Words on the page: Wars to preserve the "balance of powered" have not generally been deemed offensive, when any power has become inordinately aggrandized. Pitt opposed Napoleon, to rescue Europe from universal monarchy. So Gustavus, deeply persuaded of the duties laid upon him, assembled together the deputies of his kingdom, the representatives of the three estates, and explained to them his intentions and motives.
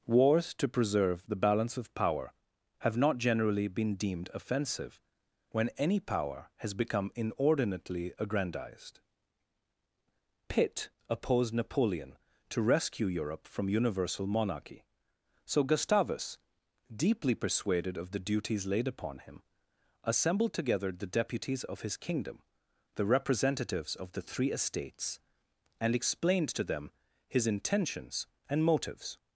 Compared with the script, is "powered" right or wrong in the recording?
wrong